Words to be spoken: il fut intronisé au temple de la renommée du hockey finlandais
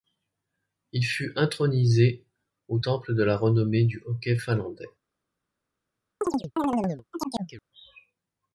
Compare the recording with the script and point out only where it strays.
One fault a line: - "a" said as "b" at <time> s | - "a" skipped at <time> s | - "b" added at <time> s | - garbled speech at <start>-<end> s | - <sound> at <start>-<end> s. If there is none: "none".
- chirp at 6.2-7.6 s